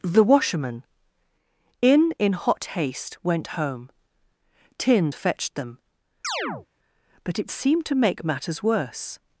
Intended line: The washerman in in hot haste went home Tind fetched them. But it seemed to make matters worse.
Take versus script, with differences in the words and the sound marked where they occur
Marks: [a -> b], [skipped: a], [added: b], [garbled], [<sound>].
The washerman in in hot haste went home Tind fetched them. [chirp] But it seemed to make matters worse.